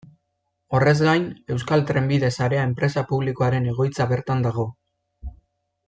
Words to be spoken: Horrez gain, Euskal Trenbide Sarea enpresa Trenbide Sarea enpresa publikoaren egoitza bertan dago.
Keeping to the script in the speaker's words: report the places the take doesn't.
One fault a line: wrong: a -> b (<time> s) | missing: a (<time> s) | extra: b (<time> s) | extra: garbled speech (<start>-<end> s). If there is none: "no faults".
missing: Trenbide Sarea enpresa (3.0 s)